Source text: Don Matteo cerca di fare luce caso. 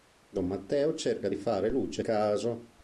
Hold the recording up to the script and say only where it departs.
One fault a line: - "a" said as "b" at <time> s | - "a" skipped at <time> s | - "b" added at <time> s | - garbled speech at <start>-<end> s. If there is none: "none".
none